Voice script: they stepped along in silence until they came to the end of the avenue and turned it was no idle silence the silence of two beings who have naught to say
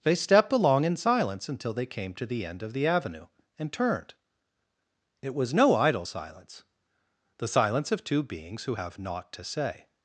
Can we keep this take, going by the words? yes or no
yes